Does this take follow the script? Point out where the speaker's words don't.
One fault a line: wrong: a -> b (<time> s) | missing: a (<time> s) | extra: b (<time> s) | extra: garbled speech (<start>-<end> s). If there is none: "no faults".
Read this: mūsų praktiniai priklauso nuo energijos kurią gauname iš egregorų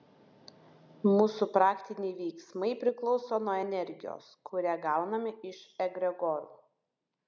extra: veiksmai (2.2 s)